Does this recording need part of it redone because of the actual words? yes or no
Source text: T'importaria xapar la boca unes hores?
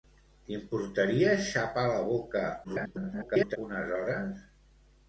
yes